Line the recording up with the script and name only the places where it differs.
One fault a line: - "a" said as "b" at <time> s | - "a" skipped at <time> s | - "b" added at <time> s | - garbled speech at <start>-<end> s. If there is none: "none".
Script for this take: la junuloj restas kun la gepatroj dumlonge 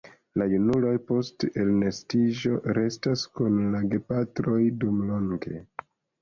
- "post elnestiĝo" added at 1.1 s